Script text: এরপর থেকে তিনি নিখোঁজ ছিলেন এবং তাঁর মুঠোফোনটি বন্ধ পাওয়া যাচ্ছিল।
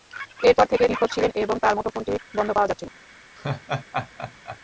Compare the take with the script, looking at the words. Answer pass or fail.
fail